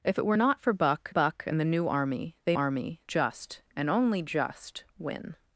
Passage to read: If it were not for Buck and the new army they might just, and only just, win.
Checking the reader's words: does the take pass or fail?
fail